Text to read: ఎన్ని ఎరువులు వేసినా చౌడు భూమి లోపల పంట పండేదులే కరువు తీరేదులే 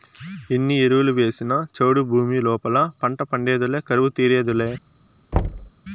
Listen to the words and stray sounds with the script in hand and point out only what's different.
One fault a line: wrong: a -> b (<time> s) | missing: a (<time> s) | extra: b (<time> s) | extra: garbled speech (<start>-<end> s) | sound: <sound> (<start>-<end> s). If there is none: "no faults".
sound: thud (5.3-5.7 s)